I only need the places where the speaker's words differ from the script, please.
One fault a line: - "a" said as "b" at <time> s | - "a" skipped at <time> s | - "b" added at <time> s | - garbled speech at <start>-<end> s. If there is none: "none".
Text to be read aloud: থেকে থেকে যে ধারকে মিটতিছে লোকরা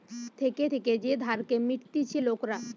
none